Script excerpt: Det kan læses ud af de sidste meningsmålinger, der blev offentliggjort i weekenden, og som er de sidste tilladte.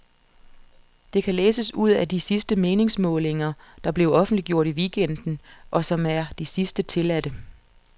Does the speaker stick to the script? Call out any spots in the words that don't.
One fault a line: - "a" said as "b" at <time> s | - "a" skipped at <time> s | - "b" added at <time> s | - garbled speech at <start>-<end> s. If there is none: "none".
none